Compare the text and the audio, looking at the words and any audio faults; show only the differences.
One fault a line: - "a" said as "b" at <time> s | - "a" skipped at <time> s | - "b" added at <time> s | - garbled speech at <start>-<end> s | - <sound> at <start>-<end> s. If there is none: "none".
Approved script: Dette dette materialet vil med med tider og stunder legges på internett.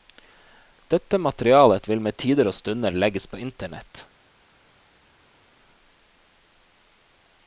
- "dette" skipped at 1.2 s
- "med" skipped at 2.2 s